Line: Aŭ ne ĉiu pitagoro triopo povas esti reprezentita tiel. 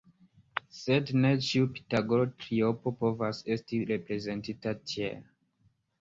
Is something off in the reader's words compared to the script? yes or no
yes